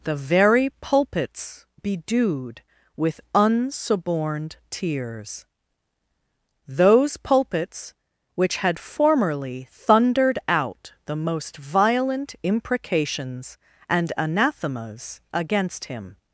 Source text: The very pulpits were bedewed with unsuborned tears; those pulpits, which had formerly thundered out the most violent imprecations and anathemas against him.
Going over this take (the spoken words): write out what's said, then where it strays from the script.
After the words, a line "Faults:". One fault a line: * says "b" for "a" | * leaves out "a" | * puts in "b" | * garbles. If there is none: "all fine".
The very pulpits bedewed with unsuborned tears; those pulpits, which had formerly thundered out the most violent imprecations and anathemas against him.
Faults:
* leaves out "were"